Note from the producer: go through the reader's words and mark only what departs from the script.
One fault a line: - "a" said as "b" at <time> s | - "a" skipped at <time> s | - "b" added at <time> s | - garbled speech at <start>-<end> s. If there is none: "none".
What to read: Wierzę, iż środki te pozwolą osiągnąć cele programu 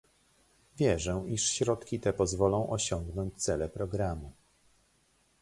none